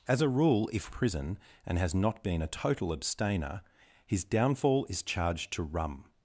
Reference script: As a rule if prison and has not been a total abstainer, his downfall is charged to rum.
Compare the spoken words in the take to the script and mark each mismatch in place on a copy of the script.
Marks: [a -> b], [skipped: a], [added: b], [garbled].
As a rule if prison and has not been a total abstainer, his downfall is charged to rum.